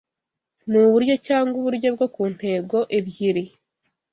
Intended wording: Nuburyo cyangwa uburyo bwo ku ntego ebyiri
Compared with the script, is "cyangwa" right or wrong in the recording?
right